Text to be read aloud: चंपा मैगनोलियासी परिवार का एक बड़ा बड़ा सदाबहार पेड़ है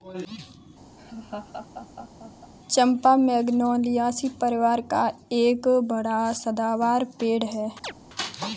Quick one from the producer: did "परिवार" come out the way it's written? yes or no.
yes